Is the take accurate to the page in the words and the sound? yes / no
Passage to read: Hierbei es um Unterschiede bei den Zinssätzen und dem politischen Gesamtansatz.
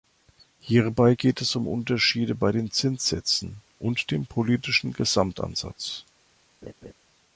no